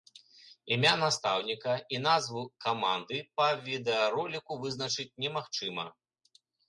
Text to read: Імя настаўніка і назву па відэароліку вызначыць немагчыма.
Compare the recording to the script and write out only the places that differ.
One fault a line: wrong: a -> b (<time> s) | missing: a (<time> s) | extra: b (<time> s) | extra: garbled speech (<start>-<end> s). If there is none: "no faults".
extra: каманды (2.7 s)